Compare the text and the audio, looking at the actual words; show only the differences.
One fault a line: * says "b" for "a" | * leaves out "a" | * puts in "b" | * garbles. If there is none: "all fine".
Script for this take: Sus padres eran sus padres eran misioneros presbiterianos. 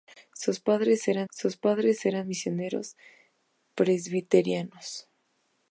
all fine